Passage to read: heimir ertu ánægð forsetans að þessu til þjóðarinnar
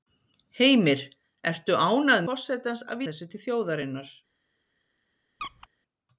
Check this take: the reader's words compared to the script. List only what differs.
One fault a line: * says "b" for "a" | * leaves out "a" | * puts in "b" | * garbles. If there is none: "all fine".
all fine